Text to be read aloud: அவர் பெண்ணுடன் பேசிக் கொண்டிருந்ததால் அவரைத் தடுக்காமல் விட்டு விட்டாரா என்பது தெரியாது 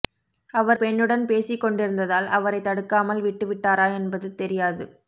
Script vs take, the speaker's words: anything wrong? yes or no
no